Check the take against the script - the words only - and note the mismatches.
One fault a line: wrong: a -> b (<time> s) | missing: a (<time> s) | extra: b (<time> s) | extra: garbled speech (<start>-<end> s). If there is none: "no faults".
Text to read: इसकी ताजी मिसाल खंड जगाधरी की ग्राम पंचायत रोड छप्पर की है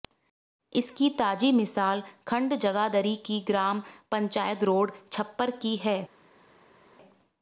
no faults